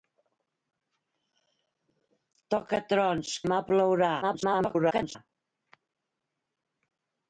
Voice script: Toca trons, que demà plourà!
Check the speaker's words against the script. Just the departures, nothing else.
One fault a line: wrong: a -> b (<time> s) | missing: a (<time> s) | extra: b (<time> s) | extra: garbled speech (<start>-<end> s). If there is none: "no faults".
missing: que (3.4 s)
extra: garbled speech (4.2-5.2 s)